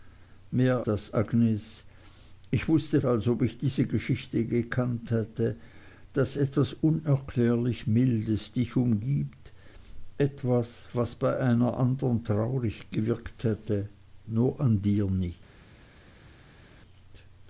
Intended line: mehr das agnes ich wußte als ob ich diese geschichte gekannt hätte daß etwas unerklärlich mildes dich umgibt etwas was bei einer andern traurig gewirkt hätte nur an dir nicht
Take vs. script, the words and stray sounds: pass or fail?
pass